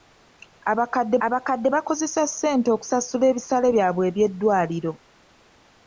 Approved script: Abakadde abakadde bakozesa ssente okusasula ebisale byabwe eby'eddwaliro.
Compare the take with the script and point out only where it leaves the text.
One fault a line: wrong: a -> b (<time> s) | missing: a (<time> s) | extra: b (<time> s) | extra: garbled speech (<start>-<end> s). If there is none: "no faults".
no faults